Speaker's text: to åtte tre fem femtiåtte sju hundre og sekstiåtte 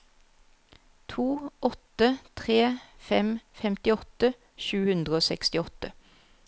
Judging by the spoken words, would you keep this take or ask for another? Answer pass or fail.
pass